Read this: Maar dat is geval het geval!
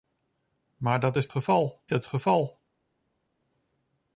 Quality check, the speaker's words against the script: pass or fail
pass